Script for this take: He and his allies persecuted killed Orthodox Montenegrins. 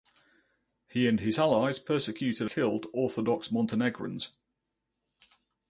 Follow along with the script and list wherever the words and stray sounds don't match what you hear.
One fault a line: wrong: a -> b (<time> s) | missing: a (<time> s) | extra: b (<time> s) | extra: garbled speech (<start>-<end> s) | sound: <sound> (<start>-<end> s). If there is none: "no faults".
no faults